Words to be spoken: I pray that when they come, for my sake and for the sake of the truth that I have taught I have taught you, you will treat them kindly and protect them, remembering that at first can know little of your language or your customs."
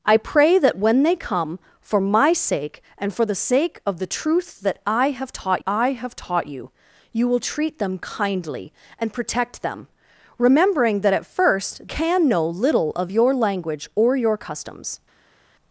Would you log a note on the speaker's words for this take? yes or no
no